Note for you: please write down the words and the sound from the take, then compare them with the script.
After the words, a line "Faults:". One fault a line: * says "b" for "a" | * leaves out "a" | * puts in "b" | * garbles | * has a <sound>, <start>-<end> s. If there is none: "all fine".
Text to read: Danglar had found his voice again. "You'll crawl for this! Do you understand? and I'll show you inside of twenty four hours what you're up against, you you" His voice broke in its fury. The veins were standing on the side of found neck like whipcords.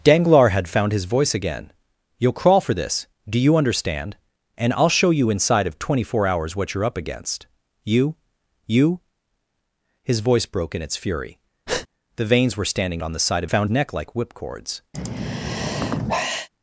Danglar had found his voice again. "You'll crawl for this! Do you understand? and I'll show you inside of twenty four hours what you're up against, you you" His voice broke in its fury. The veins were standing on the side of found neck like whipcords.
Faults:
* has a breath, 11.7-11.9 s
* has a sigh, 14.9-16.5 s